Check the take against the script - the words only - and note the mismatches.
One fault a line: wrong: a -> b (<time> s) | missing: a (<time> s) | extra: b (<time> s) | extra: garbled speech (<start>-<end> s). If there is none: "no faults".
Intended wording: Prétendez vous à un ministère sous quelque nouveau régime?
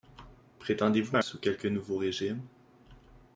missing: un ministère (1.2 s)